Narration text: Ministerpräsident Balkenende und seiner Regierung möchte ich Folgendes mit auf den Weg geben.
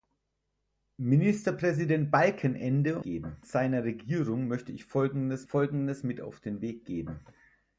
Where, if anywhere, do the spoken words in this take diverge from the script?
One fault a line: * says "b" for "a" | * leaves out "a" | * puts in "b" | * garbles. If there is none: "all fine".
* says "geben" for "und"
* puts in "Folgendes"